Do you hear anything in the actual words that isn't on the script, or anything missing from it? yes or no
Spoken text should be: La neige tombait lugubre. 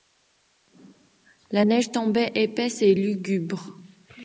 yes